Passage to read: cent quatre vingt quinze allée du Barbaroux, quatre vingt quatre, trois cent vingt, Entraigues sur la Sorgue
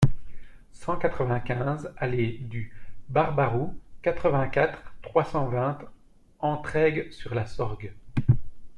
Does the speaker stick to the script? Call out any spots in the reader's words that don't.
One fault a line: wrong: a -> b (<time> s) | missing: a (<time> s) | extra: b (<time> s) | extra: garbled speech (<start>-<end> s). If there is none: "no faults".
no faults